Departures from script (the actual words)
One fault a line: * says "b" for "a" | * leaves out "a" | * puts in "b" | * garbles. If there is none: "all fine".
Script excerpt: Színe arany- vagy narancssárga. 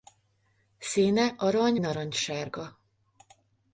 * leaves out "vagy"